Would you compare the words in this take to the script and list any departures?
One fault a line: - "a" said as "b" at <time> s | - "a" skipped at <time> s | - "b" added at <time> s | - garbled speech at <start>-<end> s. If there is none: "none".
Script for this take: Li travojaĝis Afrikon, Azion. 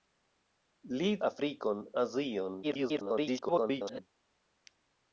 - "travojaĝis" skipped at 1.1 s
- garbled speech at 2.6-4.0 s